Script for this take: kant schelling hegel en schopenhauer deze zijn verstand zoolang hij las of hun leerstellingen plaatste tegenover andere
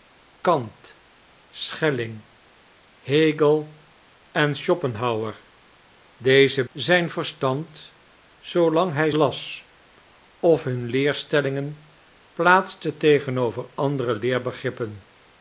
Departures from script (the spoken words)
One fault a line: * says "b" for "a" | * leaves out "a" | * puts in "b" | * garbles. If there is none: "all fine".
all fine